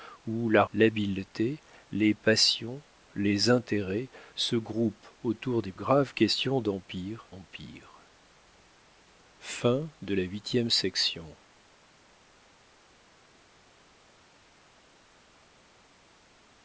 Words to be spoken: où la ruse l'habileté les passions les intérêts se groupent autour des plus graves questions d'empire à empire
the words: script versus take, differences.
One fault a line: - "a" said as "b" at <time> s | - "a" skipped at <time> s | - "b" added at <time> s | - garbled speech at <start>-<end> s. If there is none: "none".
- "ruse" skipped at 0.6 s
- "plus" skipped at 5.7 s
- "à" skipped at 7.3 s